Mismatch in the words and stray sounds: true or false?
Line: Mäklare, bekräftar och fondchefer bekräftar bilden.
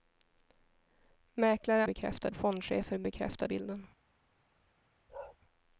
true